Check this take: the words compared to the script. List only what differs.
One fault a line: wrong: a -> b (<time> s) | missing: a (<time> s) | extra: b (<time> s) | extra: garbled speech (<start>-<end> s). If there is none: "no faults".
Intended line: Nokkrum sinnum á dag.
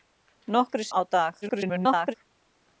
missing: sinnum (0.9 s)
extra: garbled speech (1.4-2.1 s)